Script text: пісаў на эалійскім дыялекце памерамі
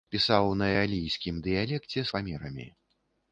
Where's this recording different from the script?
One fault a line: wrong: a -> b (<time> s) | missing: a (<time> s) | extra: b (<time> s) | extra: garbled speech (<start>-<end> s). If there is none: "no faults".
no faults